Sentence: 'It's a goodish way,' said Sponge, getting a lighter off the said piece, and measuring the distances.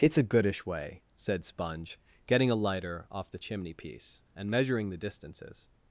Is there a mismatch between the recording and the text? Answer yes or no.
yes